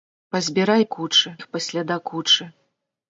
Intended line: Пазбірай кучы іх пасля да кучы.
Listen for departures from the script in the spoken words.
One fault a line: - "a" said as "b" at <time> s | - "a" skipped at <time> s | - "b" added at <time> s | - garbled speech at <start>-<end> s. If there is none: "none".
none